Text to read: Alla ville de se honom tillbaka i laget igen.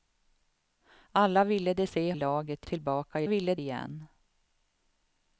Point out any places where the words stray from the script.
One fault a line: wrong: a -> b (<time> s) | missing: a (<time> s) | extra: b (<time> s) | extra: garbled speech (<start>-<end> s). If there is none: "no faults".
wrong: honom -> laget (2.1 s)
wrong: laget -> ville (3.2 s)